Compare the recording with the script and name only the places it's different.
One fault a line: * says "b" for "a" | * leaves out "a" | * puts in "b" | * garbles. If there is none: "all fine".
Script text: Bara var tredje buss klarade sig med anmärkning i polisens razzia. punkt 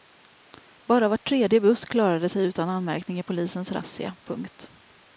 * says "utan" for "med"